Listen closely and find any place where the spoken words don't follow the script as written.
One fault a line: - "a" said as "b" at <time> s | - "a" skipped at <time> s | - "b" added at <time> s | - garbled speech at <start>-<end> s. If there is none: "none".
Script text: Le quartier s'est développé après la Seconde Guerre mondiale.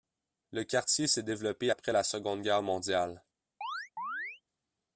none